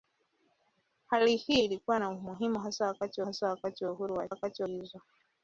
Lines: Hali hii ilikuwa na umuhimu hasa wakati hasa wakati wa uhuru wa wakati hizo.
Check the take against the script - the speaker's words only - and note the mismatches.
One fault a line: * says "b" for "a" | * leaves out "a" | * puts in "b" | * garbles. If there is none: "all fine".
all fine